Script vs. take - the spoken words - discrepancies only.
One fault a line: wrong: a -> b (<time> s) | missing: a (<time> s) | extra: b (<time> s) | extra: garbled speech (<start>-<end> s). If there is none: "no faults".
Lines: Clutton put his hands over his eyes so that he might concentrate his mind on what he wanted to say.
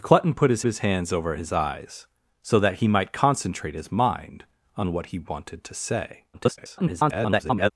extra: his (0.6 s)
extra: garbled speech (6.3-7.7 s)